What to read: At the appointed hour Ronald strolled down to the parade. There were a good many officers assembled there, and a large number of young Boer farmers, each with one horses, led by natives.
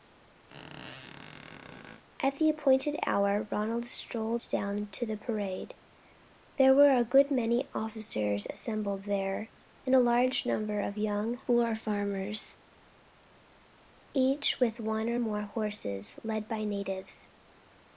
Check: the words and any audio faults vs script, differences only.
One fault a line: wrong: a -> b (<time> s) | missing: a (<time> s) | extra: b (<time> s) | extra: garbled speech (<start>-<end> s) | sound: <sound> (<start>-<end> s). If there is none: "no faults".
sound: squeak (0.5-2.0 s)
extra: or more (15.1 s)